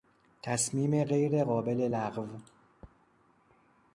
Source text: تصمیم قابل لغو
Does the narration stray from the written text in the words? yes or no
yes